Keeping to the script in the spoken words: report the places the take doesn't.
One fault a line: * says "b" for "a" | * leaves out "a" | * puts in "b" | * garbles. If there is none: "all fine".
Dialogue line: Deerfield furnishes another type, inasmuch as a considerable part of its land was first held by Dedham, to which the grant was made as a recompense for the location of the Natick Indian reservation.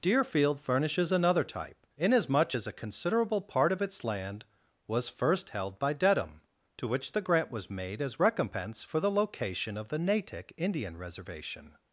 * leaves out "a"